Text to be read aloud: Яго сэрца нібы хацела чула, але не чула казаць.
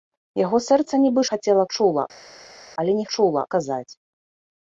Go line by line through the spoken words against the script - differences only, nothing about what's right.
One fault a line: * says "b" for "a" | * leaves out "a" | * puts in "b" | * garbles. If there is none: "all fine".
all fine